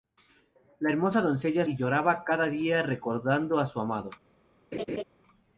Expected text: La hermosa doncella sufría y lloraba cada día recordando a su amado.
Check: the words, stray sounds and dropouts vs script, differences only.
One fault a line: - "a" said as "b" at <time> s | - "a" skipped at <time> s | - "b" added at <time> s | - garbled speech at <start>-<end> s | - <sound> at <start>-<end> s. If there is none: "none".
- "sufría" skipped at 1.6 s
- laugh at 4.7-5.0 s